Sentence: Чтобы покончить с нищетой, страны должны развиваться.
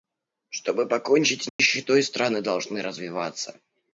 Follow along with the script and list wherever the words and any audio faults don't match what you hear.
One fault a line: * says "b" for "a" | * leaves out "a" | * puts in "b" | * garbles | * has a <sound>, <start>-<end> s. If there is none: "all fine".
* has a dropout, 1.5-1.6 s